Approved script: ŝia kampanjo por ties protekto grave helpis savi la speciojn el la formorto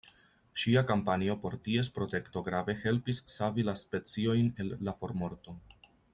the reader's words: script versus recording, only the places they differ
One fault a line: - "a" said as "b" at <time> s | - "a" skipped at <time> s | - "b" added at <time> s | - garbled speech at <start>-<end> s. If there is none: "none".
none